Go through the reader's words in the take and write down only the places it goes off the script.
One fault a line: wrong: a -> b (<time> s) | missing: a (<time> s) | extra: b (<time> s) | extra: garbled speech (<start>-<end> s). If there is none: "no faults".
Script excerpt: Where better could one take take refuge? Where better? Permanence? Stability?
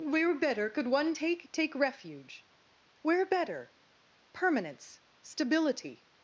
no faults